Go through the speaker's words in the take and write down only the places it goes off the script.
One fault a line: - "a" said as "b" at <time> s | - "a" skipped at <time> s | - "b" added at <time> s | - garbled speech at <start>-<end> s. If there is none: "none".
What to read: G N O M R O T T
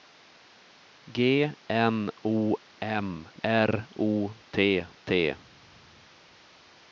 none